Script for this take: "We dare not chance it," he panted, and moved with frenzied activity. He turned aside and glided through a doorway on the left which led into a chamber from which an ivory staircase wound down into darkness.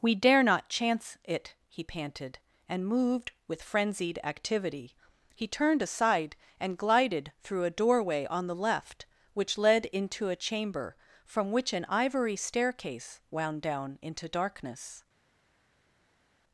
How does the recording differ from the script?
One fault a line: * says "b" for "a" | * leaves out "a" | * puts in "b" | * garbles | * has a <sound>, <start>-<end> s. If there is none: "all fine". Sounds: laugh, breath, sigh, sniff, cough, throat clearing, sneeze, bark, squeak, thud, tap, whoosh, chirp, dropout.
all fine